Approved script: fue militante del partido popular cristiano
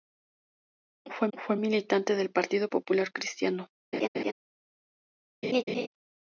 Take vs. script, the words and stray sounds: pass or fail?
fail